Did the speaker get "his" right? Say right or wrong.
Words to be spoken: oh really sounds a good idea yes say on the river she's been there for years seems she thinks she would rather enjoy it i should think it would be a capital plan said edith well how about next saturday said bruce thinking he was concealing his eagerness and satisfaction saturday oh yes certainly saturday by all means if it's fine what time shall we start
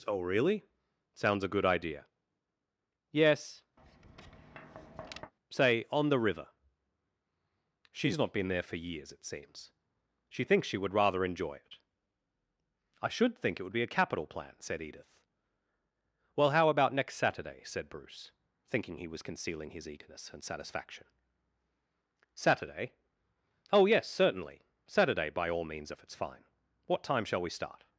right